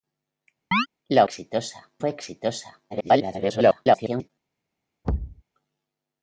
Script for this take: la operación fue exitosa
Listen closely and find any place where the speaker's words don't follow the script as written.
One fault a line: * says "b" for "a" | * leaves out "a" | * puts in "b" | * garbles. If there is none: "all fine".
* says "exitosa" for "operación"
* garbles